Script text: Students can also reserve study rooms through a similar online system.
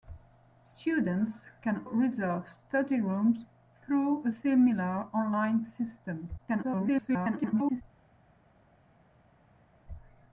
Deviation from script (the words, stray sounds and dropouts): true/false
true